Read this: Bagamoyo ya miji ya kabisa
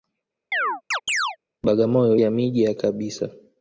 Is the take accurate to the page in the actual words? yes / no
yes